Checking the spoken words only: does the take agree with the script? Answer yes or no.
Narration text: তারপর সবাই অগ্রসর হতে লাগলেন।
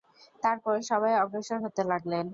yes